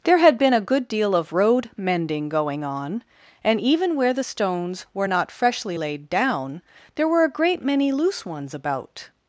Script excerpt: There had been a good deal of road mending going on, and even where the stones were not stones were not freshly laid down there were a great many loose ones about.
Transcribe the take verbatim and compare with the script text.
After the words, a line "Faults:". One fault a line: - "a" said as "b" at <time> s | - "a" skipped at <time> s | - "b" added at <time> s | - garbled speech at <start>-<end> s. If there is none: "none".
There had been a good deal of road mending going on, and even where the stones were not freshly laid down there were a great many loose ones about.
Faults:
- "stones were not" skipped at 5.3 s